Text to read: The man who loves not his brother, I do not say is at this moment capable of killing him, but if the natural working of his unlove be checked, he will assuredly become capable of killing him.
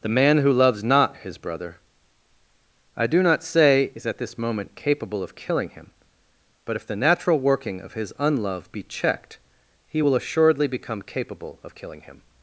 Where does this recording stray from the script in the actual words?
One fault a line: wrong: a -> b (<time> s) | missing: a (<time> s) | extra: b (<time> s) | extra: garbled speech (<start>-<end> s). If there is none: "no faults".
no faults